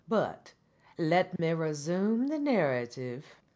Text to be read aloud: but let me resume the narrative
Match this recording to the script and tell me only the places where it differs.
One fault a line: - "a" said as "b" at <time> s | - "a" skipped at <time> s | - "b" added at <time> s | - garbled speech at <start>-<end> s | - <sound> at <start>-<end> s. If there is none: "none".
- dropout at 1.4-1.4 s